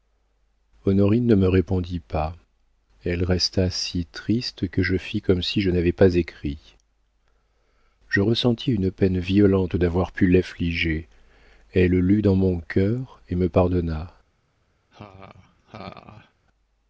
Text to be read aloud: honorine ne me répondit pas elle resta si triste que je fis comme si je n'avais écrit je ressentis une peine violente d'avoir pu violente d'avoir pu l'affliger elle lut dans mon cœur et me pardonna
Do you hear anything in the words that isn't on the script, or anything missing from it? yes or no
yes